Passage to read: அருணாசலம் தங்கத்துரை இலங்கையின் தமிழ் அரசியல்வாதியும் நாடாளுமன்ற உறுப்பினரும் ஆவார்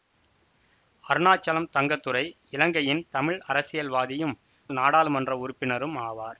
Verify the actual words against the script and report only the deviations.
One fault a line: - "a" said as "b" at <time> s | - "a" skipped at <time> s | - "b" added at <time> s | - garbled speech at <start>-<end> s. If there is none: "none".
none